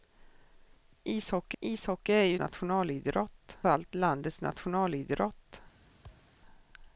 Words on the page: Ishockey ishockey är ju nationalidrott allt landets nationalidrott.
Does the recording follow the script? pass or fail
pass